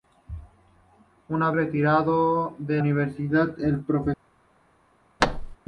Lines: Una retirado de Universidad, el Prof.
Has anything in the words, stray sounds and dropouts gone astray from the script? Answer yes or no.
yes